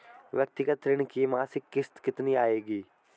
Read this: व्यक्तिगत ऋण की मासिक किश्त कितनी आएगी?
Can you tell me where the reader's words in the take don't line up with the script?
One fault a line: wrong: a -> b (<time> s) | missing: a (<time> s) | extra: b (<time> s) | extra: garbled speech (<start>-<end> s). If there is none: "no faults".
no faults